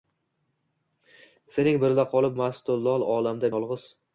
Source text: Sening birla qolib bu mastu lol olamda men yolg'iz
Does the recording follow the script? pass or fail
fail